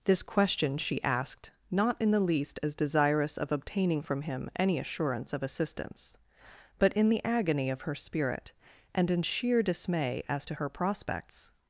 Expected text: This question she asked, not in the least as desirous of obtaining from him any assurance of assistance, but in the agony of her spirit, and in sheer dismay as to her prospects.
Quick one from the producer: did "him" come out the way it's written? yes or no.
yes